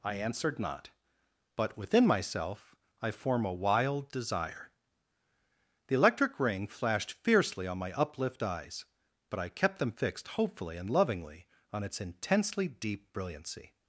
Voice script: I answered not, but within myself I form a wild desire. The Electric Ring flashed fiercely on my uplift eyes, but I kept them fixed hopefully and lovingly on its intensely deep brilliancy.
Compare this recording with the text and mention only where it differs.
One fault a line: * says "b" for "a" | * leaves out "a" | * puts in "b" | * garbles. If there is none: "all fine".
all fine